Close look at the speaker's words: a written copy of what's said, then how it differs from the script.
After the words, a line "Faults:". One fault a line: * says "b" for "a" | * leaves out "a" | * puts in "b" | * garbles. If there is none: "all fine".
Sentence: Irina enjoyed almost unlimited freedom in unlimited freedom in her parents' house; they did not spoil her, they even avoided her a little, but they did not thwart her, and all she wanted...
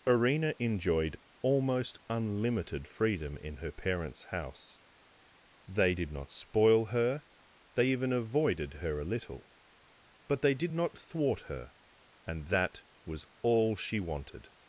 Irina enjoyed almost unlimited freedom in her parents' house; they did not spoil her, they even avoided her a little, but they did not thwart her, and that was all she wanted...
Faults:
* leaves out "unlimited freedom in"
* puts in "that was"